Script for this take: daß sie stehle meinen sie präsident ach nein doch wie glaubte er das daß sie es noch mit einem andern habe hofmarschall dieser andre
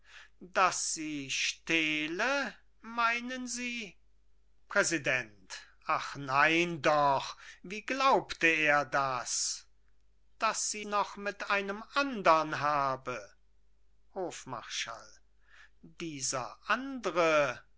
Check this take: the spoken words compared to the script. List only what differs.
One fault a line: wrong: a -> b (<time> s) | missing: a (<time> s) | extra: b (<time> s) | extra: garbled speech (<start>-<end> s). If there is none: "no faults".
missing: es (10.9 s)